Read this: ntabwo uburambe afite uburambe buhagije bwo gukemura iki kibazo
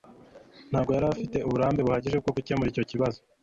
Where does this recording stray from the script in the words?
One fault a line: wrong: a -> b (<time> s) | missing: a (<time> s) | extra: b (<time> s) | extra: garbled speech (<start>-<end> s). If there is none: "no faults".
wrong: uburambe -> yari (0.9 s)
wrong: iki -> icyo (2.7 s)